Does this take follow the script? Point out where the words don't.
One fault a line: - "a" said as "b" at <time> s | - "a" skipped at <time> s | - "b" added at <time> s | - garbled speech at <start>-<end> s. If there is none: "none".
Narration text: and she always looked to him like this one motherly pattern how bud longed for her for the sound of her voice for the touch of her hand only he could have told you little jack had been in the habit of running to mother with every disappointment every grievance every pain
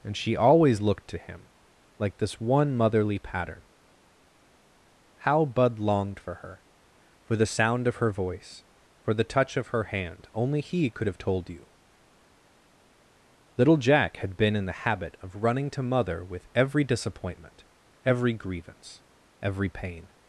none